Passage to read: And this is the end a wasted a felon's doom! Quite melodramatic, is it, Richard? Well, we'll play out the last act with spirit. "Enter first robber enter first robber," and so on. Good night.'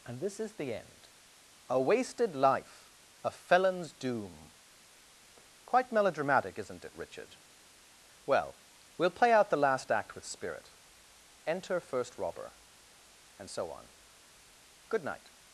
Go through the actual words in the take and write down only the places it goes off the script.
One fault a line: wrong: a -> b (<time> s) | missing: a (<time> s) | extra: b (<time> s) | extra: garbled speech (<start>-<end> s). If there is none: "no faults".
extra: life (2.4 s)
wrong: is -> isn't (6.6 s)
missing: enter first robber (12.5 s)